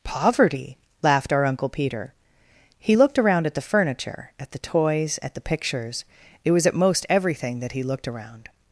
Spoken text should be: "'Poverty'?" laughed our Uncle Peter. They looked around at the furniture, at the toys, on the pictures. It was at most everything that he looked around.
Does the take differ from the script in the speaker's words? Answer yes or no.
yes